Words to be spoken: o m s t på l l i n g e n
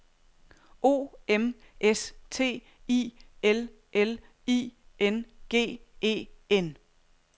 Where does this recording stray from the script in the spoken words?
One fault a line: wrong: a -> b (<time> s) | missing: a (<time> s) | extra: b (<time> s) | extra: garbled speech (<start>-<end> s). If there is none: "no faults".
wrong: på -> i (2.9 s)